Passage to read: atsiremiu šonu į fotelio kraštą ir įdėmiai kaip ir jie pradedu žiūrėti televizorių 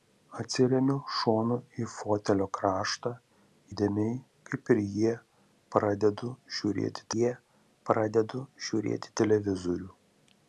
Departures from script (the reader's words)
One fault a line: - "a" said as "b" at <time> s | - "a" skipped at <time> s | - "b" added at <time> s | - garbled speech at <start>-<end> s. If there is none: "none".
- "ir" skipped at 3.1 s
- "jie pradedu žiūrėti" added at 7.2 s